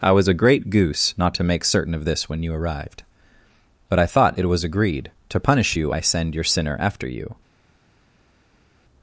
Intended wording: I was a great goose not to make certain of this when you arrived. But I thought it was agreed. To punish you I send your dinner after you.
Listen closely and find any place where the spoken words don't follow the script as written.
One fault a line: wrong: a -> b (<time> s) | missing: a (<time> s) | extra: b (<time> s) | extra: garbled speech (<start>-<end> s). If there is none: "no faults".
wrong: dinner -> sinner (6.4 s)